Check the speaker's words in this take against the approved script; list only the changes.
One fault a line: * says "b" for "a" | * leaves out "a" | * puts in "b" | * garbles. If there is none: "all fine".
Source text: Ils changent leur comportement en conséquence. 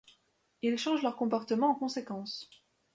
all fine